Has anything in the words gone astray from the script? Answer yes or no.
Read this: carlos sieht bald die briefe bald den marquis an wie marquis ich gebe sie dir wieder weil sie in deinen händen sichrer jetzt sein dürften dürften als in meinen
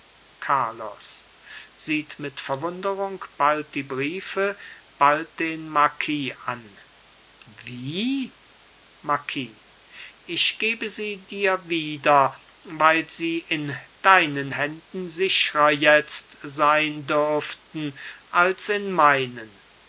yes